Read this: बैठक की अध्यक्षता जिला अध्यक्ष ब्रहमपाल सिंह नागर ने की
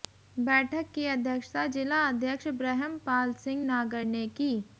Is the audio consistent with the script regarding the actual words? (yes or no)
yes